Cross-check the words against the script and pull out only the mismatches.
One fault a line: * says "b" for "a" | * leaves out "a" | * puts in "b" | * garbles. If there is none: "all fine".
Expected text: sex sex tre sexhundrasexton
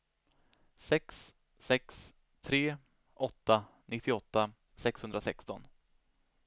* puts in "åtta nittioåtta"